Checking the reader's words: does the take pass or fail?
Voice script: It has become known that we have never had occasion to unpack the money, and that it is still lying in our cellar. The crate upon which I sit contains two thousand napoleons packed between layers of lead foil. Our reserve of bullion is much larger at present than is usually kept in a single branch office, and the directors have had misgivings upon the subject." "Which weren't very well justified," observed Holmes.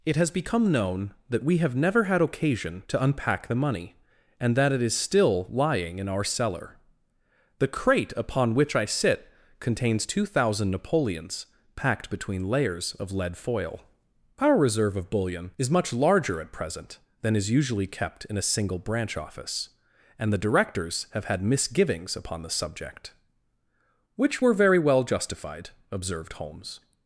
fail